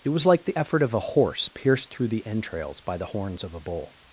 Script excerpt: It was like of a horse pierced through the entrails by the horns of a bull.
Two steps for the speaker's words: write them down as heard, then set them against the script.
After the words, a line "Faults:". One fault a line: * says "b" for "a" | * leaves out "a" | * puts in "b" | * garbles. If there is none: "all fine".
It was like the effort of a horse pierced through the entrails by the horns of a bull.
Faults:
* puts in "the effort"